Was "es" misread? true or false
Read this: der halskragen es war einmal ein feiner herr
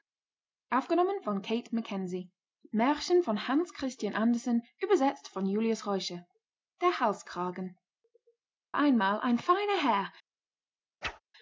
true